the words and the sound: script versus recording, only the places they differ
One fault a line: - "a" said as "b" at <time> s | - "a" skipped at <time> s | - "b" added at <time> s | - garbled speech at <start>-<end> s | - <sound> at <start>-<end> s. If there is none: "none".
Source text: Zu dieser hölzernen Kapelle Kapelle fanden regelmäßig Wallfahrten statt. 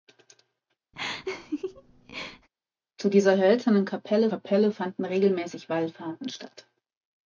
- laugh at 0.9-2.5 s